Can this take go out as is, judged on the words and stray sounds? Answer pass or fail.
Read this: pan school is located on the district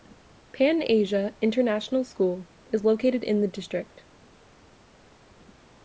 fail